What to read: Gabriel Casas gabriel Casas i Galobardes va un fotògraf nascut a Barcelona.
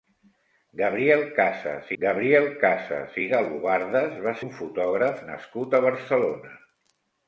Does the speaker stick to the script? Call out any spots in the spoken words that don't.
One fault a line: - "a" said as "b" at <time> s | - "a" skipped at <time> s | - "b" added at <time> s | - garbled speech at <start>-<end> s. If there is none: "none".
none